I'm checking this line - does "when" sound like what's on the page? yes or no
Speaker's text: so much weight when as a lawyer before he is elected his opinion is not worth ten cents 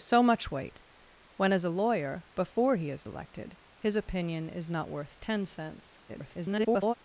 yes